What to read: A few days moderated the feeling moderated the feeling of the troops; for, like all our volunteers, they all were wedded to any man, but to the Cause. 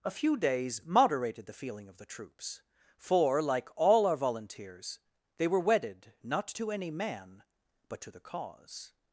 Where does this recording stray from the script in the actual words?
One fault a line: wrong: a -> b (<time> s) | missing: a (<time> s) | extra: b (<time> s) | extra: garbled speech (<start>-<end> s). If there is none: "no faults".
missing: moderated the feeling (1.9 s)
missing: all (5.5 s)
extra: not (6.2 s)